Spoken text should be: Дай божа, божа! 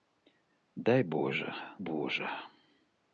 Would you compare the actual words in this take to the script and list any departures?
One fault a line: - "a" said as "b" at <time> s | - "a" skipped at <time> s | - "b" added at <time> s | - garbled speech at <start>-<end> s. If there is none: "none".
none